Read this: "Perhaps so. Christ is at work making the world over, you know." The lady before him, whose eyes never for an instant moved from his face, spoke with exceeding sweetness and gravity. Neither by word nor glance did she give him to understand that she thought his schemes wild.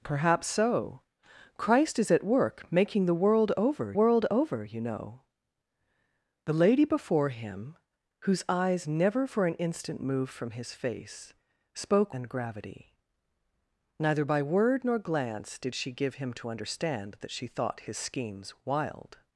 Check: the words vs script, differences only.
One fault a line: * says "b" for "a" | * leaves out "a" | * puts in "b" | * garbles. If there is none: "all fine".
* puts in "world over"
* leaves out "with exceeding sweetness"